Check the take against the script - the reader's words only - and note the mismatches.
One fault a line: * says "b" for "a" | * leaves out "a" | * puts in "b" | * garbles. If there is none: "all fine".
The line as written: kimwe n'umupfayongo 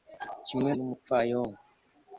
all fine